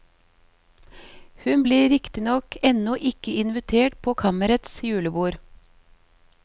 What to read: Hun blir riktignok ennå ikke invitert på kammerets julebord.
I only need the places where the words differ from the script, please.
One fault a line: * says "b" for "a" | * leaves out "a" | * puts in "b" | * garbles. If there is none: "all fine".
all fine